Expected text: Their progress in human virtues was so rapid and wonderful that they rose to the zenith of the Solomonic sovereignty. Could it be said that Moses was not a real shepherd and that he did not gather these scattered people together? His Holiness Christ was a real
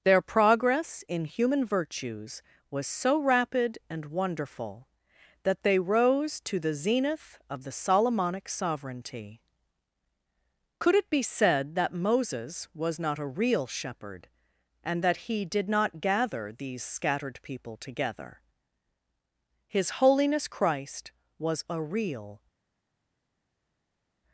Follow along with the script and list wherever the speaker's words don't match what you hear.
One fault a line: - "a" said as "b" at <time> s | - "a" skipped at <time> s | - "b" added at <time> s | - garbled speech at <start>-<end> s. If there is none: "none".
none